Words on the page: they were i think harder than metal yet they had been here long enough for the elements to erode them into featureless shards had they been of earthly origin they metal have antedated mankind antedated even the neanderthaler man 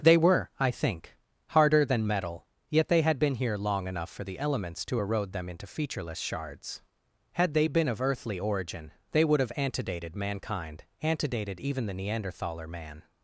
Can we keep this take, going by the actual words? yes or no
no